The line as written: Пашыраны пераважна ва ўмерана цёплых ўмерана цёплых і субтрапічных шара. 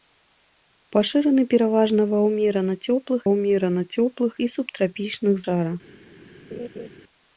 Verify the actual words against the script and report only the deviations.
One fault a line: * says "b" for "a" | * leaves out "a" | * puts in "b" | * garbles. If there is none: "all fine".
all fine